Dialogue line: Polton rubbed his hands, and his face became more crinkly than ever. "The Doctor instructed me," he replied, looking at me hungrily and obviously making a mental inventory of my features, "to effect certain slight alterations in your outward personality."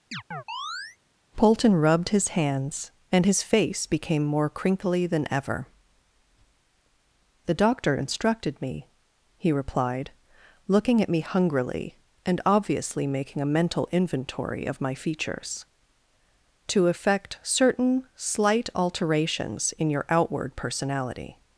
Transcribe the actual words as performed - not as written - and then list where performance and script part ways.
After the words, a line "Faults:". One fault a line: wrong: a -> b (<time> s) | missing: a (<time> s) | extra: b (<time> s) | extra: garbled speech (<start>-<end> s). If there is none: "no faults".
Polton rubbed his hands, and his face became more crinkly than ever. "The Doctor instructed me," he replied, looking at me hungrily and obviously making a mental inventory of my features, "to effect certain slight alterations in your outward personality."
Faults:
no faults